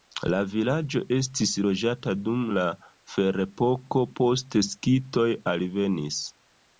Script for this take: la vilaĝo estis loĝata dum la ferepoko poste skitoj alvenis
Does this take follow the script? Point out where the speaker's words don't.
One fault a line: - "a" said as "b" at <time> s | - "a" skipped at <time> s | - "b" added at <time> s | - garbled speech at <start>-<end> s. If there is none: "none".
none